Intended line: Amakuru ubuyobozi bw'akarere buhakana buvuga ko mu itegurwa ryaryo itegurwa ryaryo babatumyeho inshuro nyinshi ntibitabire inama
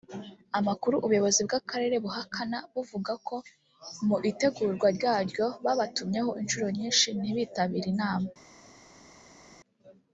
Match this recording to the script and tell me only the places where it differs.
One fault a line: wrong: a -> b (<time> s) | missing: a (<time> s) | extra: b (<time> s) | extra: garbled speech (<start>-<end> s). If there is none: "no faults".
missing: itegurwa ryaryo (5.5 s)